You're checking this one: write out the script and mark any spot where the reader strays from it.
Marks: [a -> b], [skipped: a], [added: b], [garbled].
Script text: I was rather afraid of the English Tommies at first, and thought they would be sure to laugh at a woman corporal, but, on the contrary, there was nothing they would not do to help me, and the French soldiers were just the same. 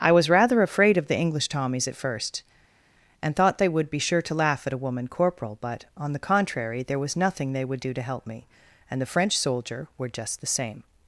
I was rather afraid of the English Tommies at first, and thought they would be sure to laugh at a woman corporal, but, on the contrary, there was nothing they would [skipped: not] do to help me, and the French [soldiers -> soldier] were just the same.